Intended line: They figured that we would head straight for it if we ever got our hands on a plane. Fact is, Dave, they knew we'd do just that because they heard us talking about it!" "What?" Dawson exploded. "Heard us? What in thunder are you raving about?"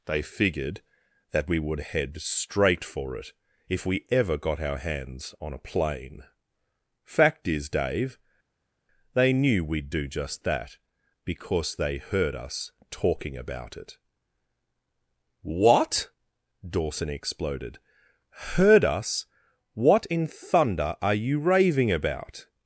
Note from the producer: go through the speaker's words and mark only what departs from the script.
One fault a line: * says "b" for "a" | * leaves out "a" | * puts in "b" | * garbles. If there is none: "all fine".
all fine